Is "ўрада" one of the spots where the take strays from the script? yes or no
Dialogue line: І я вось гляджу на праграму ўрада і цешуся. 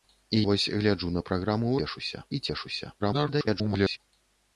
yes